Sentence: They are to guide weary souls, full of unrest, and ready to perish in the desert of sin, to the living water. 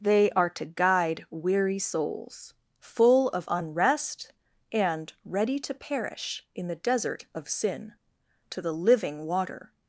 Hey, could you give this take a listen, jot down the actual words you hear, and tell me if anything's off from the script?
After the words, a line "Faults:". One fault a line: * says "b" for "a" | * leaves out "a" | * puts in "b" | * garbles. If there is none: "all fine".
They are to guide weary souls, full of unrest, and ready to perish in the desert of sin, to the living water.
Faults:
all fine